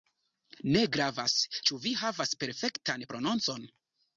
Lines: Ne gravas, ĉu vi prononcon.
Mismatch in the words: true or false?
true